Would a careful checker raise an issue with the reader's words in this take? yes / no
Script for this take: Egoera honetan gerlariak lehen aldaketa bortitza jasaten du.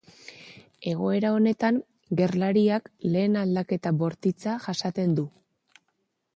no